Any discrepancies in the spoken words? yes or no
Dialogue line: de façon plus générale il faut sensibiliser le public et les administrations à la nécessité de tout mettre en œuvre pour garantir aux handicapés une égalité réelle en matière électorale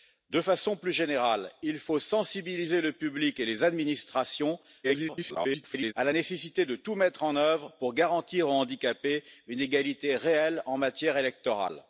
yes